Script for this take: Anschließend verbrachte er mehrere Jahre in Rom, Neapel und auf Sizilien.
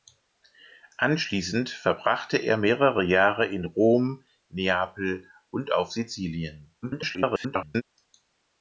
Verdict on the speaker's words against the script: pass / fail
fail